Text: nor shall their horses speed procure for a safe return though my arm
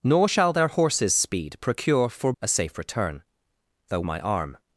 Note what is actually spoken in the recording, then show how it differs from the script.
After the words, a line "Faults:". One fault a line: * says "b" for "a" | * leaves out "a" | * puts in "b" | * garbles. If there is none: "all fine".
nor shall their horses speed procure for a safe return though my arm
Faults:
all fine